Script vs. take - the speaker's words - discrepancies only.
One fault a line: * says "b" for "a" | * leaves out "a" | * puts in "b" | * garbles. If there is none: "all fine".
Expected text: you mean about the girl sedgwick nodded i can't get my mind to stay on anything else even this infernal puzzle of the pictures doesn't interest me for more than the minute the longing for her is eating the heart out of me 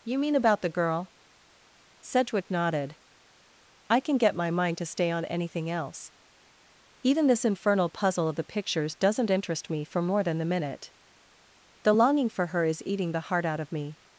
* says "can" for "can't"